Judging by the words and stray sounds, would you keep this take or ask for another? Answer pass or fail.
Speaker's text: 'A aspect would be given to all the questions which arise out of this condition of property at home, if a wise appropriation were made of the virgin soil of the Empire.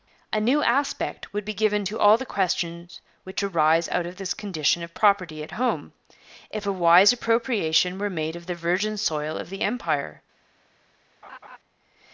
fail